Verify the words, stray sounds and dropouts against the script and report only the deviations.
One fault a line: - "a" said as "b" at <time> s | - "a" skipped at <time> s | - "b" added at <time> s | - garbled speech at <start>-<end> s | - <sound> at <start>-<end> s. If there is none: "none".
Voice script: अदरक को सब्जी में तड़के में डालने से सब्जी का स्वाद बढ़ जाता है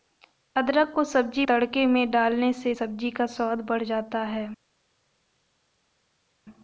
- "में" skipped at 1.4 s